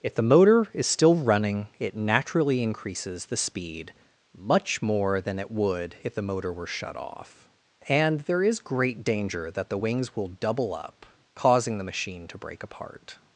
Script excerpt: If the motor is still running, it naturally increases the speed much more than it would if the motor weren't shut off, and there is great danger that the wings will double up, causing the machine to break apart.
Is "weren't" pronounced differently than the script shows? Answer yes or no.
yes